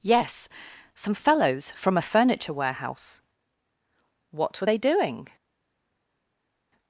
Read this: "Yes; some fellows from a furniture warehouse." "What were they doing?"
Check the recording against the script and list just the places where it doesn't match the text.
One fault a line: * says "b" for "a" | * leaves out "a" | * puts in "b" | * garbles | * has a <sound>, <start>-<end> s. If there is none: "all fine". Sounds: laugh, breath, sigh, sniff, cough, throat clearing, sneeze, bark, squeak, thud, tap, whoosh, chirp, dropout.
all fine